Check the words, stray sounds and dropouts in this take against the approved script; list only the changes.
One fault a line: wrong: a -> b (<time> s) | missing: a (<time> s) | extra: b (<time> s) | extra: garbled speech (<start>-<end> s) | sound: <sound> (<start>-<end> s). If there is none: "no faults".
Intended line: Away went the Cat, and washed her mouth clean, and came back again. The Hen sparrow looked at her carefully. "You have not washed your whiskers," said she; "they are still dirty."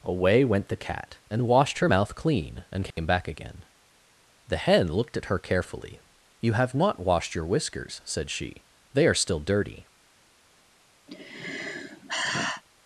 sound: dropout (2.9-3.0 s)
missing: sparrow (4.9 s)
sound: sigh (11.1-12.6 s)